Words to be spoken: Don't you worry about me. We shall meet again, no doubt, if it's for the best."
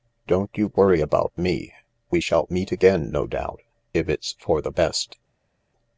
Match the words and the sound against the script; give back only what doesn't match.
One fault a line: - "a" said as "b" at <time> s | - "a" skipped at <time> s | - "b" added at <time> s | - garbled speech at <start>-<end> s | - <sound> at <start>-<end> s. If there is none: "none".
none